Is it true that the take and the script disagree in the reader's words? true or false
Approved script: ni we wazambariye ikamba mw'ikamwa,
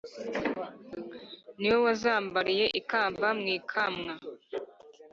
false